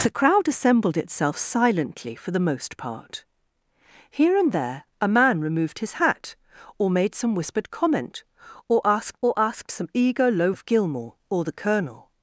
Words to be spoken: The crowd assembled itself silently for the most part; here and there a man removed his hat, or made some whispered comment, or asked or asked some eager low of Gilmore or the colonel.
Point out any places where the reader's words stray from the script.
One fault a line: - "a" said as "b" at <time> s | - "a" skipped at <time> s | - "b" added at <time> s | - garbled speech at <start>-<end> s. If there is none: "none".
none